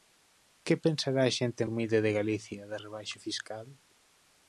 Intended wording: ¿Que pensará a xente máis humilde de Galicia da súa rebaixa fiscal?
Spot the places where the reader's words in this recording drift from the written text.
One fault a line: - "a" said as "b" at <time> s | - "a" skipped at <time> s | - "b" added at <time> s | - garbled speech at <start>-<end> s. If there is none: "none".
- "máis" skipped at 1.6 s
- "súa" skipped at 2.8 s